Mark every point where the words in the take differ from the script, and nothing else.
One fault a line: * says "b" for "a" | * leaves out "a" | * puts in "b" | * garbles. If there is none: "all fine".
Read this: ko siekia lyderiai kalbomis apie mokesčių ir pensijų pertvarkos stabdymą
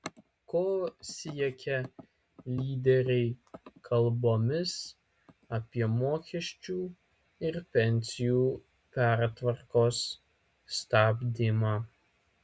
all fine